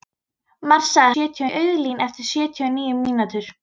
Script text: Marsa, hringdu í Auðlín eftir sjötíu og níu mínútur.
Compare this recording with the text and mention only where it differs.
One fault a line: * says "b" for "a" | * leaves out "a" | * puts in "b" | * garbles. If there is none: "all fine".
* says "sjötíu" for "hringdu"